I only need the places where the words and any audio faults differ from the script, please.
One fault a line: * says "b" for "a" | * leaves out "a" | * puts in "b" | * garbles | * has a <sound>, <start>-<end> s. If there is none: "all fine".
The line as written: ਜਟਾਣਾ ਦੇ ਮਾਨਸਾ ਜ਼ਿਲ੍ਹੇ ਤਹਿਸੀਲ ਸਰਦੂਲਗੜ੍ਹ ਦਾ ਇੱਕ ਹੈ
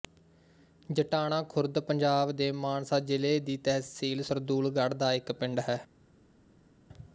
* puts in "ਖੁਰਦ ਪੰਜਾਬ"
* puts in "ਦੀ"
* puts in "ਪਿੰਡ"